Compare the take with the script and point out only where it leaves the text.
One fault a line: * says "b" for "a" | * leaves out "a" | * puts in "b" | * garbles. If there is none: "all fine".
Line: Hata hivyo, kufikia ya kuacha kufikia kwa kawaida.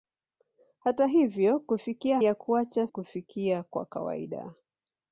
all fine